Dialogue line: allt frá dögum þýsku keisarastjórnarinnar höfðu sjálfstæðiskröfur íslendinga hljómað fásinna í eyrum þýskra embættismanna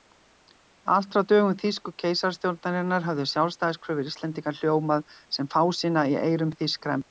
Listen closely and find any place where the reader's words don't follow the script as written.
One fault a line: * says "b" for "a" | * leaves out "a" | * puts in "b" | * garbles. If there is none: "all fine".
* puts in "sem"